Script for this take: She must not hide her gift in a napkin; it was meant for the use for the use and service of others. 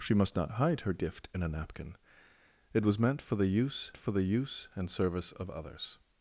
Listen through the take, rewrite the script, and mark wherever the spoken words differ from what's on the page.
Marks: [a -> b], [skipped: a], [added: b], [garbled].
She must not hide her gift in a napkin; it was meant for the use for the use and service of others.